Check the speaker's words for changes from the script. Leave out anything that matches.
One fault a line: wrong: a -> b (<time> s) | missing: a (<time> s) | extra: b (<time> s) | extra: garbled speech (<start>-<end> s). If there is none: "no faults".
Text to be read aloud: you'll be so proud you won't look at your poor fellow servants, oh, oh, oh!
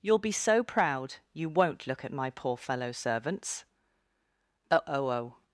wrong: your -> my (2.1 s)